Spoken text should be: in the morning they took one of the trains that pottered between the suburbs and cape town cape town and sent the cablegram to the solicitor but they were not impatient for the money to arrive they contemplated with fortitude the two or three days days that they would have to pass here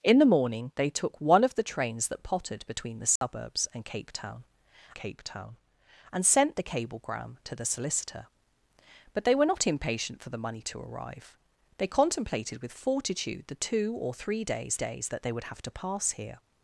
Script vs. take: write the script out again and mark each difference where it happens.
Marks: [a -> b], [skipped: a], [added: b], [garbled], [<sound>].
in the morning they took one of the trains that pottered between the suburbs [dropout] and cape town cape town and sent the cablegram to the solicitor but they were not impatient for the money to arrive they contemplated with fortitude the two or three days days that they would have to pass here